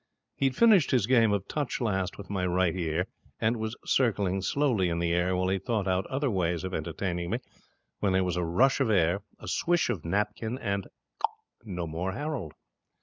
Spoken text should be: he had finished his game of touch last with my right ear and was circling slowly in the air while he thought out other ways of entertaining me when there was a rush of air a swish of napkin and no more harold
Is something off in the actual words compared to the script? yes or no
no